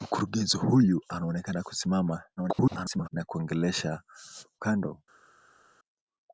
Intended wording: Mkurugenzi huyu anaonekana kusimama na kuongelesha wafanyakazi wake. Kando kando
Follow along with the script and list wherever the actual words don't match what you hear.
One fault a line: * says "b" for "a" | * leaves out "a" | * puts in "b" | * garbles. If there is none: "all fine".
* garbles
* leaves out "wafanyakazi wake Kando"